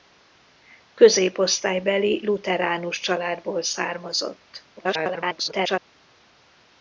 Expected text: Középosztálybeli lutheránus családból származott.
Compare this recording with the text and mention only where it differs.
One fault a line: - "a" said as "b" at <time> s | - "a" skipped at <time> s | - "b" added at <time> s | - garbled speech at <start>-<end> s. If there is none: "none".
- garbled speech at 4.8-5.9 s